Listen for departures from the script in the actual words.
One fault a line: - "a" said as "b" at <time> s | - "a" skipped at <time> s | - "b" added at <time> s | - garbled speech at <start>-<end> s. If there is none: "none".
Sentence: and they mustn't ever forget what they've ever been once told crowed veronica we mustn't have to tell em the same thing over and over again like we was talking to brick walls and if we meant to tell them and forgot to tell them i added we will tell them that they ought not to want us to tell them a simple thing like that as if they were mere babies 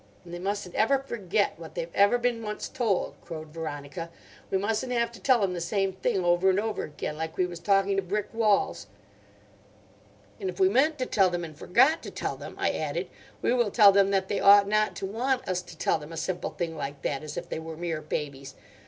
none